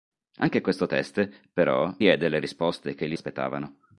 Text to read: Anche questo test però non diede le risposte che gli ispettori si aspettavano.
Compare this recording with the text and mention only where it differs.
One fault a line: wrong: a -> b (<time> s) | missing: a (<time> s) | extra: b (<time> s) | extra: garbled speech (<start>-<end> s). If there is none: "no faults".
missing: non (1.9 s)
missing: ispettori si (3.1 s)